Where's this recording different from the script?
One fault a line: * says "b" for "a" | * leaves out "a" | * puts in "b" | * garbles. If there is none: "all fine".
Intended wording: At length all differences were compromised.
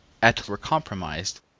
* leaves out "length all differences"